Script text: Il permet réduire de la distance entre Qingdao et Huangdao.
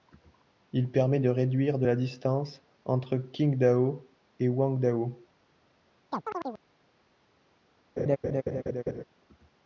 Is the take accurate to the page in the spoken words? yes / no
no